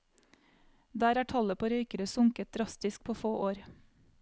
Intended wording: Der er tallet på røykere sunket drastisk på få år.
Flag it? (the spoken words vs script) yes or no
no